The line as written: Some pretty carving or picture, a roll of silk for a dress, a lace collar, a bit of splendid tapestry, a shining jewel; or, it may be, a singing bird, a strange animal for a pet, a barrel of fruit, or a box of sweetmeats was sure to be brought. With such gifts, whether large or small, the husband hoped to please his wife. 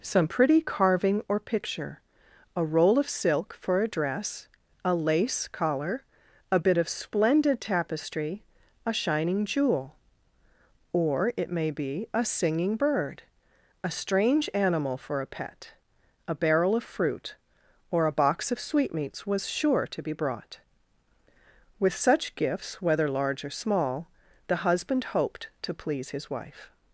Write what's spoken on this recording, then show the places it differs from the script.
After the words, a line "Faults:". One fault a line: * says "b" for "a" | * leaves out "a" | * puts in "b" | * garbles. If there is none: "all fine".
Some pretty carving or picture, a roll of silk for a dress, a lace collar, a bit of splendid tapestry, a shining jewel; or, it may be, a singing bird, a strange animal for a pet, a barrel of fruit, or a box of sweetmeats was sure to be brought. With such gifts, whether large or small, the husband hoped to please his wife.
Faults:
all fine